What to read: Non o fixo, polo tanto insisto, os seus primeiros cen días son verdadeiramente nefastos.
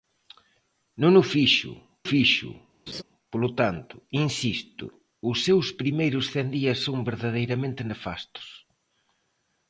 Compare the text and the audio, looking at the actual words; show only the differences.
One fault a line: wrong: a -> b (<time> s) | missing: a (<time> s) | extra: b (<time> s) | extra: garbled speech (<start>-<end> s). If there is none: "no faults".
extra: fixo (2.1 s)